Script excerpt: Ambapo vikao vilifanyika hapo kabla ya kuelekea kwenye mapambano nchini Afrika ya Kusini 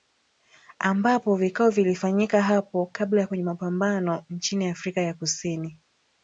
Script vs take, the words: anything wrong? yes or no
yes